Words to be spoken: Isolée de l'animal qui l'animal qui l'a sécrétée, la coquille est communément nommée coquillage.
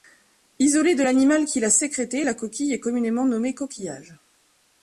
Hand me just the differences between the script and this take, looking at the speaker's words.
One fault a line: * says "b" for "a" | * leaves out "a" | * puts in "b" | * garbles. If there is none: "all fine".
* leaves out "l'animal qui"